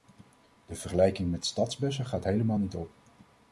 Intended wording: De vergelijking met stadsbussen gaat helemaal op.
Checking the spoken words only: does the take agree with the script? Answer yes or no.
no